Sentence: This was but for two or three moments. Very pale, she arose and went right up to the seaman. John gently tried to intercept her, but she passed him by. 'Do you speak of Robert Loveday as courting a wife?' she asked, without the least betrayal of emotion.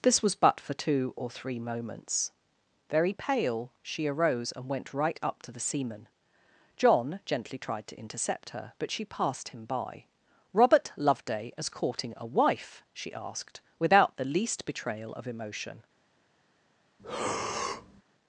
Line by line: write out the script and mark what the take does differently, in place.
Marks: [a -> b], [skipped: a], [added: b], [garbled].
This was but for two or three moments. Very pale, she arose and went right up to the seaman. John gently tried to intercept her, but she passed him by. [skipped: 'Do you speak of] Robert Loveday as courting a wife?' she asked, without the least betrayal of emotion.